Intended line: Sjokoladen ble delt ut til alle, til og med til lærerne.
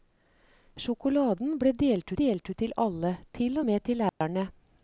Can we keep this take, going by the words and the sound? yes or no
no